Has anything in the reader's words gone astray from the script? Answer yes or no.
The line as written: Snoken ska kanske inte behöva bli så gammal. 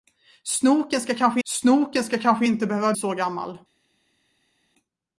yes